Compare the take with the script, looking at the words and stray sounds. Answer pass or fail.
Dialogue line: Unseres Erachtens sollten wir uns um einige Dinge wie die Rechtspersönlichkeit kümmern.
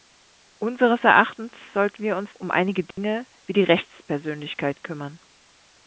fail